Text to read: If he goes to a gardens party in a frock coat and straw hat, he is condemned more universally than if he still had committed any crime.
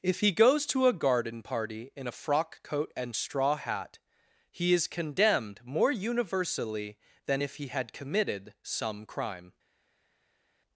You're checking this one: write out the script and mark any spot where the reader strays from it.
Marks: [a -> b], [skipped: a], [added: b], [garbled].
If he goes to a [gardens -> garden] party in a frock coat and straw hat, he is condemned more universally than if he [skipped: still] had committed [any -> some] crime.